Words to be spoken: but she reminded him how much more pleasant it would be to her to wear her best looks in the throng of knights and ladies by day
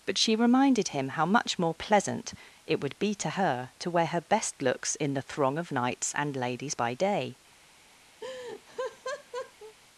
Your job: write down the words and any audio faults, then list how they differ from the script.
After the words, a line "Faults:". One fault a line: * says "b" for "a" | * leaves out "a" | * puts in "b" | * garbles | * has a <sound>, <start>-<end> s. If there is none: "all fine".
but she reminded him how much more pleasant it would be to her to wear her best looks in the throng of knights and ladies by day
Faults:
* has a laugh, 8.2-9.8 s